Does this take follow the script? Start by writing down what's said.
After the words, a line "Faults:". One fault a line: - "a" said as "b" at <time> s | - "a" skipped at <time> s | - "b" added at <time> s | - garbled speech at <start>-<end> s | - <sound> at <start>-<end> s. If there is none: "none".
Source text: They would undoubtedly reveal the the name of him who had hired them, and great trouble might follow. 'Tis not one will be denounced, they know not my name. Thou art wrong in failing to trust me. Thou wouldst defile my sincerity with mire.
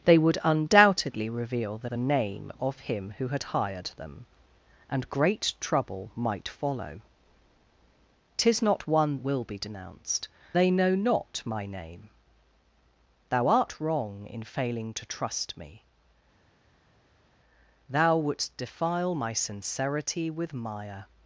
They would undoubtedly reveal the the name of him who had hired them, and great trouble might follow. 'Tis not one will be denounced, they know not my name. Thou art wrong in failing to trust me. Thou wouldst defile my sincerity with mire.
Faults:
none